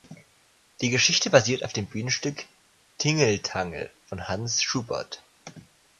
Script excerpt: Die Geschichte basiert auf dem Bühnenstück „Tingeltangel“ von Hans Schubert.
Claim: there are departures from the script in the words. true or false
false